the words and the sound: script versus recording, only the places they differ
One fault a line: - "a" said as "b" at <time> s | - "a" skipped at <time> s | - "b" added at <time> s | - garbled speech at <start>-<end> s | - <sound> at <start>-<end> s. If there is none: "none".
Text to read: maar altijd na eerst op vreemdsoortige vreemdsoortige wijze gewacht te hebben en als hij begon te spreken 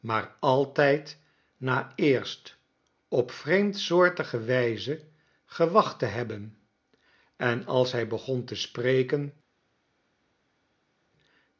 - "vreemdsoortige" skipped at 4.4 s